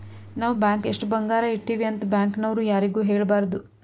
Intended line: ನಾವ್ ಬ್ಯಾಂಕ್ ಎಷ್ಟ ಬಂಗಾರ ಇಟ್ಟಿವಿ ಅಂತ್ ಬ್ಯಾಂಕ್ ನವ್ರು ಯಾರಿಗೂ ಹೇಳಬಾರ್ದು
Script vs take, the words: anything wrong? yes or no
no